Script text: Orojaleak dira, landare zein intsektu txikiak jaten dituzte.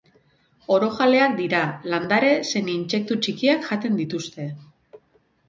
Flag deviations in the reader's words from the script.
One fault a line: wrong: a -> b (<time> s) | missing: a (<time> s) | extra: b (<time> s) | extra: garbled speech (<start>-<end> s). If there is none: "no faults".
no faults